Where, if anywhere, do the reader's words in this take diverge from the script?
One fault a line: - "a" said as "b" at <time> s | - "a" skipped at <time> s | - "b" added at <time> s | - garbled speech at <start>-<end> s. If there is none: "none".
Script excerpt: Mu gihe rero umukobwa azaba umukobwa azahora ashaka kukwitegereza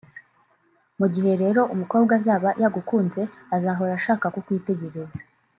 - "umukobwa" said as "yagukunze" at 2.6 s